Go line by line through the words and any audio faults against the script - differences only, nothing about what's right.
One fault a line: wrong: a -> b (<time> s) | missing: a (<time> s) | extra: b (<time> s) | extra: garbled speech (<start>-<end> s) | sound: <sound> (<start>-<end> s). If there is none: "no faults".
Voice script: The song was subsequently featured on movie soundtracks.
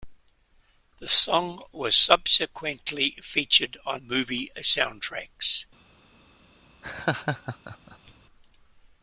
sound: laugh (6.8-8.1 s)